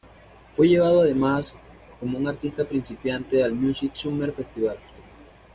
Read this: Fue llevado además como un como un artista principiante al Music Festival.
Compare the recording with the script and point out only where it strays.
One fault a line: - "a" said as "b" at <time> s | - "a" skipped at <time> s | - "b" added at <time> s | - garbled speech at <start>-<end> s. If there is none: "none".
- "como un" skipped at 2.3 s
- "Summer" added at 3.9 s